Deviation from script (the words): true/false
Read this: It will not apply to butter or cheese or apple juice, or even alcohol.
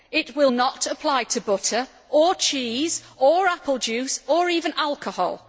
false